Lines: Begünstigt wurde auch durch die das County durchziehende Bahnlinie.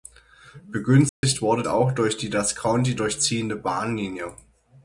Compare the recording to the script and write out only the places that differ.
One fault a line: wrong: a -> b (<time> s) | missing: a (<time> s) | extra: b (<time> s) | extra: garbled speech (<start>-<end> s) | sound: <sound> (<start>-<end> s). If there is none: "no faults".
sound: dropout (1.1-1.2 s)